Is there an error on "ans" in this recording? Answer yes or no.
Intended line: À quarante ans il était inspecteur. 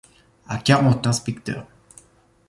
yes